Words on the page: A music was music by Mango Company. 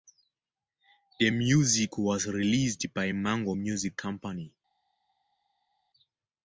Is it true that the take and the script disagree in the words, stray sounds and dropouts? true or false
true